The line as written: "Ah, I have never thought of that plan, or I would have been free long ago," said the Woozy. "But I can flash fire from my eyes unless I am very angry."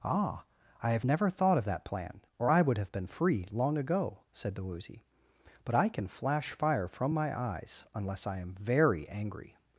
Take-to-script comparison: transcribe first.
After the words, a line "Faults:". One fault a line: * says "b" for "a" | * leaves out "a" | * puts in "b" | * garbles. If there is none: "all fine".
"Ah, I have never thought of that plan, or I would have been free long ago," said the Woozy. "But I can flash fire from my eyes unless I am very angry."
Faults:
all fine